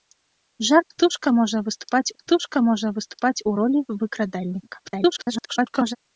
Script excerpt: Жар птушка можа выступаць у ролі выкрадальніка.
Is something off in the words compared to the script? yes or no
yes